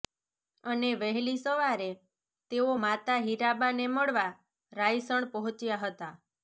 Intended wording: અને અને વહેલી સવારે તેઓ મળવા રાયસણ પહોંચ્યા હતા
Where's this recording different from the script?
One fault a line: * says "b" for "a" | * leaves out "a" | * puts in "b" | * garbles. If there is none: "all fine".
* leaves out "અને"
* puts in "માતા હીરાબાને"